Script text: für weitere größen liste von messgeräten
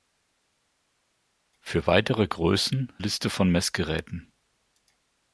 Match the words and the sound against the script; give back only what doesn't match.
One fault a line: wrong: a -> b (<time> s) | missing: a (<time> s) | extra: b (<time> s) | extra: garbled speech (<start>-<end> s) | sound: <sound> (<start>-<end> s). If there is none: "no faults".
no faults